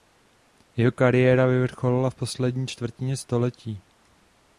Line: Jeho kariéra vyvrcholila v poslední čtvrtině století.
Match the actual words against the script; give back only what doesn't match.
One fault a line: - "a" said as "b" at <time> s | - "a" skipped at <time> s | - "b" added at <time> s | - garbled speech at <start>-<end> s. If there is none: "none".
none